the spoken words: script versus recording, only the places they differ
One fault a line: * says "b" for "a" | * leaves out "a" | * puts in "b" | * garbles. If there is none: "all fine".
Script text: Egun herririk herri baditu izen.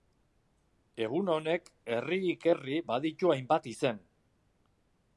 * puts in "honek"
* puts in "hainbat"